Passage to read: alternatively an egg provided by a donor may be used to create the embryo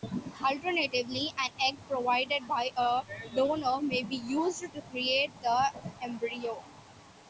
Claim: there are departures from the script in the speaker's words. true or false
false